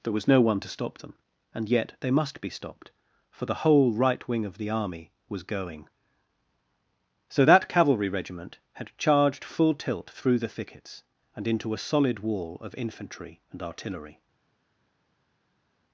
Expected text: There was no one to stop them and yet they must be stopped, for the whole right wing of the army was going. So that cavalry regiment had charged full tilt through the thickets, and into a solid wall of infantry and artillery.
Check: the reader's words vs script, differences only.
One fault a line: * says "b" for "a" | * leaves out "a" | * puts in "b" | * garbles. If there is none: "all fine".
all fine